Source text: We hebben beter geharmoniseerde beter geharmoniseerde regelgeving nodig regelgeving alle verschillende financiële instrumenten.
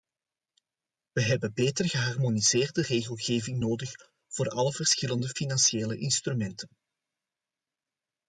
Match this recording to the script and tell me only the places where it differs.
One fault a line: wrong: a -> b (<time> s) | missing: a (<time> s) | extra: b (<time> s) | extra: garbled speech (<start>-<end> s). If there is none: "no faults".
missing: beter geharmoniseerde (2.8 s)
wrong: regelgeving -> voor (4.3 s)